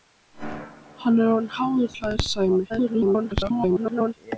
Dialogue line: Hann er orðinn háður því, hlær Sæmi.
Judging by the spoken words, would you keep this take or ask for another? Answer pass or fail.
fail